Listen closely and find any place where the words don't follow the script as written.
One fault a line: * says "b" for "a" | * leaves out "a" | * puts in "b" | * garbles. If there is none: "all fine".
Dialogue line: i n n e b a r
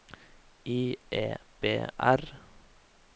* leaves out "n n"
* leaves out "a"